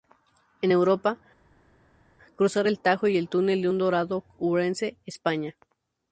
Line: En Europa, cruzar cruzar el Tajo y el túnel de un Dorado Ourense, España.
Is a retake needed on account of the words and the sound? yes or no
yes